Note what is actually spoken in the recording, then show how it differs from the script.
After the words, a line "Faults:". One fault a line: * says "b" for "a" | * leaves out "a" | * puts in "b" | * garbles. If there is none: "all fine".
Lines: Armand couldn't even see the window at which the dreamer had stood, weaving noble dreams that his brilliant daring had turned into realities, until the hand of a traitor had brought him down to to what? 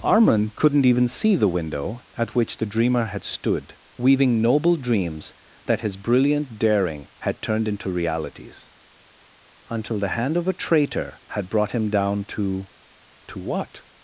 Armand couldn't even see the window at which the dreamer had stood, weaving noble dreams that his brilliant daring had turned into realities, until the hand of a traitor had brought him down to to what?
Faults:
all fine